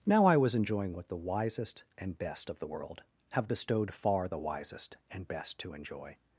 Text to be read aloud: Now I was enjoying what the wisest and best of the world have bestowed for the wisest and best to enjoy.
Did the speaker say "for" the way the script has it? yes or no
no